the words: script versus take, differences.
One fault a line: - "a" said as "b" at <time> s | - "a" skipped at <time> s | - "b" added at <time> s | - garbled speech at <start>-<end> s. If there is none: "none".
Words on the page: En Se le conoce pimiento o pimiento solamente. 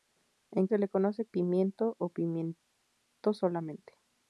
none